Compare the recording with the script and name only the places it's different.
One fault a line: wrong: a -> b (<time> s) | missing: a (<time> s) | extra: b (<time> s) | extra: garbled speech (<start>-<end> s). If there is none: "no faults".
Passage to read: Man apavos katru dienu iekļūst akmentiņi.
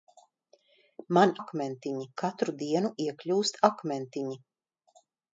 wrong: apavos -> akmentiņi (1.4 s)